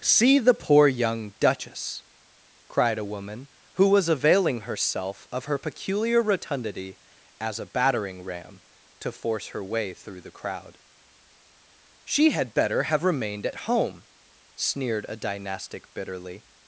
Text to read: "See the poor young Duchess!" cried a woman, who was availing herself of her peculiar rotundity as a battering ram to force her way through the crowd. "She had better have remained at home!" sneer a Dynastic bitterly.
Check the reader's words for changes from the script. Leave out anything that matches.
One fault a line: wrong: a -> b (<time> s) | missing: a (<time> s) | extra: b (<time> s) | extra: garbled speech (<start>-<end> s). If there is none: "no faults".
wrong: sneer -> sneered (14.5 s)